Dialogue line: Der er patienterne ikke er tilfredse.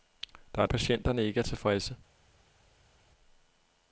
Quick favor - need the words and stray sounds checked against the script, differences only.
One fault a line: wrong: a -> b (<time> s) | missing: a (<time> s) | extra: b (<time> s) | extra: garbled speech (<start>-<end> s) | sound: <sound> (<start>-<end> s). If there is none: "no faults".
no faults